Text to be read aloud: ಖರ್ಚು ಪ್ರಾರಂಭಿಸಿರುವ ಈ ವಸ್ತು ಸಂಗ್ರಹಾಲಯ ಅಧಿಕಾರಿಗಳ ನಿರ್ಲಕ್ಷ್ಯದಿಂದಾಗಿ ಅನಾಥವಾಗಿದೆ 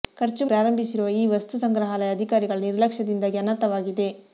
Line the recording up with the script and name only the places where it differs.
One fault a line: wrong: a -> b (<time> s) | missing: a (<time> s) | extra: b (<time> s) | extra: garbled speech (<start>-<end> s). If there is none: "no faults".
no faults